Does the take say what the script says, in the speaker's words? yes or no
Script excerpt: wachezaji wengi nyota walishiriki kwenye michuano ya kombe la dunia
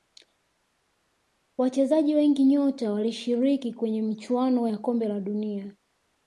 yes